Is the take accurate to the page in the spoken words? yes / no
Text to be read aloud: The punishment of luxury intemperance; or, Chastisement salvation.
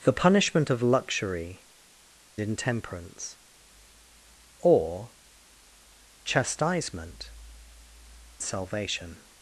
yes